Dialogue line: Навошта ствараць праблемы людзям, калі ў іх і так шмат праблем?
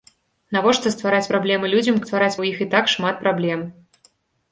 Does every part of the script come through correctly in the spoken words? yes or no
no